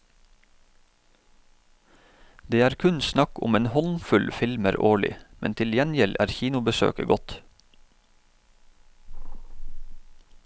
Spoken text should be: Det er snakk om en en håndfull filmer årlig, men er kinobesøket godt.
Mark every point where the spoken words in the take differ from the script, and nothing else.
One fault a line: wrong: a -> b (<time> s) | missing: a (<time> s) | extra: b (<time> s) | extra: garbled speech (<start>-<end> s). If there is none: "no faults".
extra: kun (2.8 s)
missing: en (3.7 s)
extra: til gjengjeld (5.6 s)